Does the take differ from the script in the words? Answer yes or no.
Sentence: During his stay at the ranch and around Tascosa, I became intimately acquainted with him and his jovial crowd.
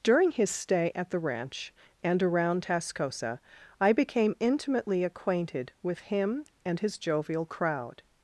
no